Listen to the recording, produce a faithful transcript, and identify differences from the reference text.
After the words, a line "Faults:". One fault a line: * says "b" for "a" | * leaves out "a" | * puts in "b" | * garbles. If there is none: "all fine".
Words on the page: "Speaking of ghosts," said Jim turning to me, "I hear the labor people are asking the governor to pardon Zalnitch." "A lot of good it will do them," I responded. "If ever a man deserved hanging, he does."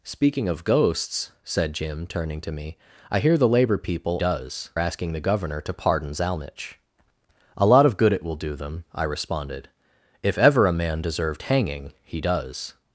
"Speaking of ghosts," said Jim turning to me, "I hear the labor people does asking the governor to pardon Zalnitch." "A lot of good it will do them," I responded. "If ever a man deserved hanging, he does."
Faults:
* says "does" for "are"